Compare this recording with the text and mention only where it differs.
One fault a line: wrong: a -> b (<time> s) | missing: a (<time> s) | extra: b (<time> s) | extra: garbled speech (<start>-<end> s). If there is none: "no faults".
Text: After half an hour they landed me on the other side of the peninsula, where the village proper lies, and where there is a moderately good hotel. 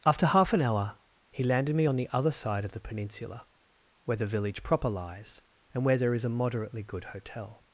wrong: they -> he (1.3 s)